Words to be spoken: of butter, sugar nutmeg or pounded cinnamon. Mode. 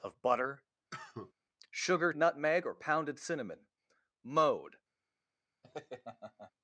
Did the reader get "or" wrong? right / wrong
right